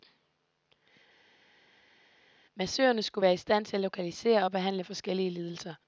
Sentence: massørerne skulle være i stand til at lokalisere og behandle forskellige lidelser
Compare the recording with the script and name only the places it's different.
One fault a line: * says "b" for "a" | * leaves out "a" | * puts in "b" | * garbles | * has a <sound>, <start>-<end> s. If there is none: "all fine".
all fine